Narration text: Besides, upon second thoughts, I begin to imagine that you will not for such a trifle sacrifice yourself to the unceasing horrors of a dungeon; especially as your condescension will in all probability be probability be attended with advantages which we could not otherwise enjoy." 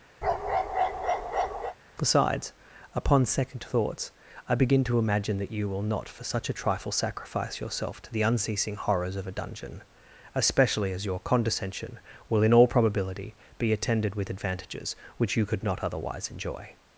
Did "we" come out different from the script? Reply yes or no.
yes